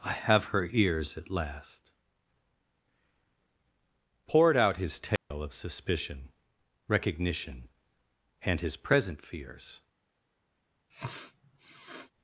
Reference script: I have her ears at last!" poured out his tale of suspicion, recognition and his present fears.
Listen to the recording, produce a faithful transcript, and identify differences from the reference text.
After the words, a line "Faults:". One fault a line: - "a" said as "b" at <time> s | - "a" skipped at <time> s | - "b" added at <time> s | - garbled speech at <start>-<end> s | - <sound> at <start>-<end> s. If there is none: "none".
I have her ears at last!" poured out his tale of suspicion, recognition and his present fears.
Faults:
- dropout at 5.2-5.3 s
- sniff at 10.9-12.1 s